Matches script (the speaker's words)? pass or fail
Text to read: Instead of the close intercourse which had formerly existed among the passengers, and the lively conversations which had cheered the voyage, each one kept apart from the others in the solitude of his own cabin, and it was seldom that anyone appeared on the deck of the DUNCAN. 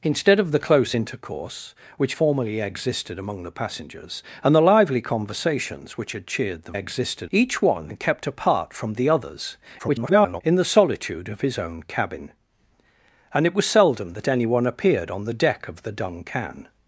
fail